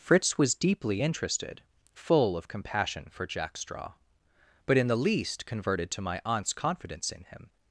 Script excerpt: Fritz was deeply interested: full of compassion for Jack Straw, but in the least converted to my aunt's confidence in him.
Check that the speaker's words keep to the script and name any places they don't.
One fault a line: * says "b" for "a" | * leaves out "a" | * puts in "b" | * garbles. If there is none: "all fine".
all fine